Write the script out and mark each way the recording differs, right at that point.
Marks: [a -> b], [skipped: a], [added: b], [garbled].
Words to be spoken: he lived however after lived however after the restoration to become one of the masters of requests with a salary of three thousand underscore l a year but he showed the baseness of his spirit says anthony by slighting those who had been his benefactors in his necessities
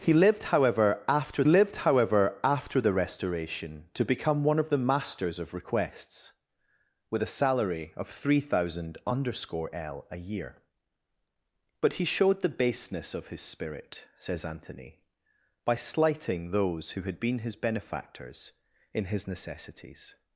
he lived however after lived however after the restoration to become one of the masters of requests with a salary of three thousand underscore l a year but he showed the baseness of his spirit says anthony by slighting those who had been his benefactors in his necessities